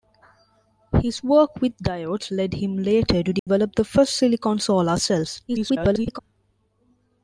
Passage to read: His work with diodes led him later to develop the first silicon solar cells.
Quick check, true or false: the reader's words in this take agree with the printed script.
false